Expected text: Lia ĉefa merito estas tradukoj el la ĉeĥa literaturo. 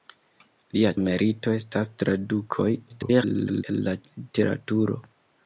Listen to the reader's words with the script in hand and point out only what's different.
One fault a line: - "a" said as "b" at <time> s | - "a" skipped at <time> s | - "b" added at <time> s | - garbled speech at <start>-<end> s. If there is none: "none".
- "ĉefa" skipped at 0.9 s
- garbled speech at 2.9-3.6 s
- "ĉeĥa" skipped at 4.0 s